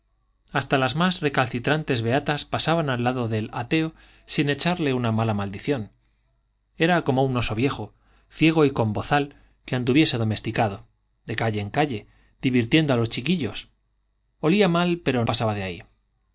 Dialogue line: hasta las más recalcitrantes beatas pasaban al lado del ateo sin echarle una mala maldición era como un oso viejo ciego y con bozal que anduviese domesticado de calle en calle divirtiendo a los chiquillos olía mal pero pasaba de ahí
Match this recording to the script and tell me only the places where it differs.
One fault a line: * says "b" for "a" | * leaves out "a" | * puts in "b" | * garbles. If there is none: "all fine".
all fine